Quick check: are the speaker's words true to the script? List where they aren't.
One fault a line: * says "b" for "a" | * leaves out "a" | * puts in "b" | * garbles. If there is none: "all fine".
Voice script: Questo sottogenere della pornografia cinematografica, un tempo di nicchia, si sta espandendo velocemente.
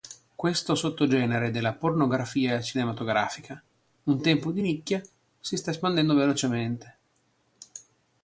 all fine